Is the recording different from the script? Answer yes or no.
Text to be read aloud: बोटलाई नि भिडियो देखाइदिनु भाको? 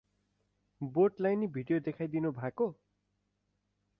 no